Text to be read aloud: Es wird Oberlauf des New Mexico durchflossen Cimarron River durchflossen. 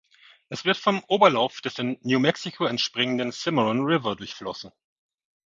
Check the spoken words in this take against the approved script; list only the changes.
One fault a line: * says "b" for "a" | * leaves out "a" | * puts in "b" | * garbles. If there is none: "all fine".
* puts in "vom"
* puts in "in"
* says "entspringenden" for "durchflossen"